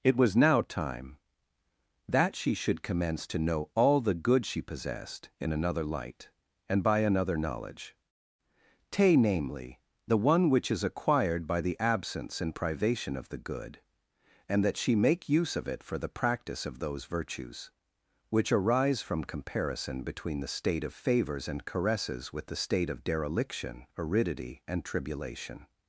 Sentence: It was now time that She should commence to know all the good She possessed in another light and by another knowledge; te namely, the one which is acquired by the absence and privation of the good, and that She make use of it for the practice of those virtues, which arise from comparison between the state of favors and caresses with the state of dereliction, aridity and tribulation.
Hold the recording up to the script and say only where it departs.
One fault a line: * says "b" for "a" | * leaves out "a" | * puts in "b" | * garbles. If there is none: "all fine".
all fine